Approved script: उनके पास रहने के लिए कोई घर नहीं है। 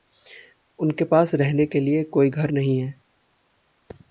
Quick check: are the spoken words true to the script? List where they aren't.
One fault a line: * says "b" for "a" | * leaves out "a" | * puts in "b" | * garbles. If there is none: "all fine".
all fine